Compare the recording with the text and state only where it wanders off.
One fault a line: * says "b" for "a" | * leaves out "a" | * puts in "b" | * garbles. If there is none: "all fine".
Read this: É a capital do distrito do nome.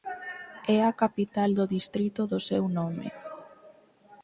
* puts in "seu"